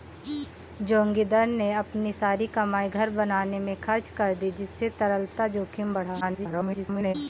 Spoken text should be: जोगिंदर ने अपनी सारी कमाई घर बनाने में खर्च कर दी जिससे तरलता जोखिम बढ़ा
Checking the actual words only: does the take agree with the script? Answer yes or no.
no